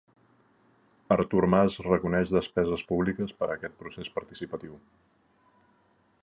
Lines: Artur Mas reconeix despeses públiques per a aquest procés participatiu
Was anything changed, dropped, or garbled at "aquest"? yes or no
no